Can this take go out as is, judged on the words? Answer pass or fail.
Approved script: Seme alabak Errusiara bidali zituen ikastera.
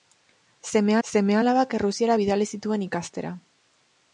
fail